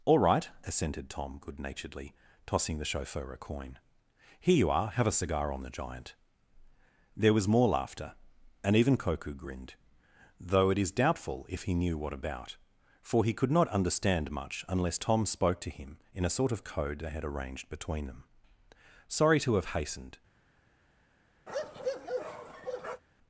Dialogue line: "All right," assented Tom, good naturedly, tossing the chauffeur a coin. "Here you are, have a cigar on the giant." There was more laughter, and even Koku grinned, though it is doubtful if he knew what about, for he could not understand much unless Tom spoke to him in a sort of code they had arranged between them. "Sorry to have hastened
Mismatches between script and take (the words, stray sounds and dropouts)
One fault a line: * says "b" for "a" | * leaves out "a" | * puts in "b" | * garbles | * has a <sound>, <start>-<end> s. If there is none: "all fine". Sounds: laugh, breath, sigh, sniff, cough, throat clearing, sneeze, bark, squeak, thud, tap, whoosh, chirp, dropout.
* has a bark, 21.5-23.0 s